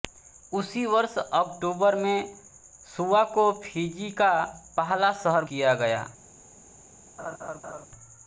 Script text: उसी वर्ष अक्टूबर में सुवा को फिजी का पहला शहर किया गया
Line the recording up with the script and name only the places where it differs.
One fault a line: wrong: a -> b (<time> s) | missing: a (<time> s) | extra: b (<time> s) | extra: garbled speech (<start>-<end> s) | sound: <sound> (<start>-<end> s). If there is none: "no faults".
sound: laugh (7.2-7.9 s)